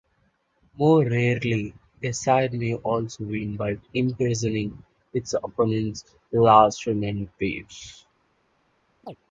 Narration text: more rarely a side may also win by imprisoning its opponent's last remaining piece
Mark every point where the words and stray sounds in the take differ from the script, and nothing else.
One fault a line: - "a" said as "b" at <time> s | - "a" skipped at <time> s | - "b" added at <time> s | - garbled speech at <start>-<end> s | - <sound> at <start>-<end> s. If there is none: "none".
- chirp at 9.0-9.2 s